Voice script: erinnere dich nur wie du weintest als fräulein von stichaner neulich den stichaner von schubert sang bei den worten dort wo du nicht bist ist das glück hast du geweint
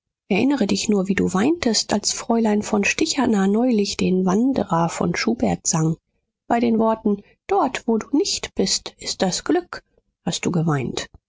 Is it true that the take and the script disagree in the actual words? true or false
true